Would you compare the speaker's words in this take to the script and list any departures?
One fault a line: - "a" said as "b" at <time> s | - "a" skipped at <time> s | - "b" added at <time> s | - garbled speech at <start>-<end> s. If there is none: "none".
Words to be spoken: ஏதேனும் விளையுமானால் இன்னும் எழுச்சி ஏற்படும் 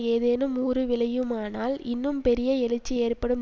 - "ஊறு" added at 0.6 s
- "பெரிய" added at 2.2 s